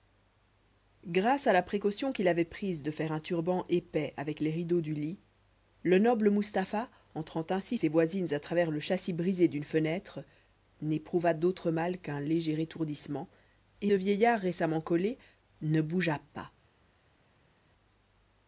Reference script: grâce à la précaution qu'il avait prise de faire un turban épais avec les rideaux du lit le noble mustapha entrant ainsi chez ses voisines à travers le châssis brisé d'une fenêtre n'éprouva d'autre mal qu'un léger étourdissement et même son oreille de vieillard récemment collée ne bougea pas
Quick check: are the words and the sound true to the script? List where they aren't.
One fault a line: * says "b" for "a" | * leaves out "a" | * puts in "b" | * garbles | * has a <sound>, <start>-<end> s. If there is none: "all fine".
* leaves out "chez"
* leaves out "même son oreille"